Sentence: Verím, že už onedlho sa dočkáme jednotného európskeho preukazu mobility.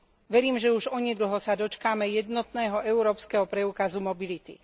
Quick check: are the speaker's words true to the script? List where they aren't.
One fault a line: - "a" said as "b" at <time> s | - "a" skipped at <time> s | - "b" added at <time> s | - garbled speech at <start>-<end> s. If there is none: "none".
none